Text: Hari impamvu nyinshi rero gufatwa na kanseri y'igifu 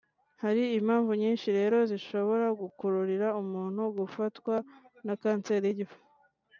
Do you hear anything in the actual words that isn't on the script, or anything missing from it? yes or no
yes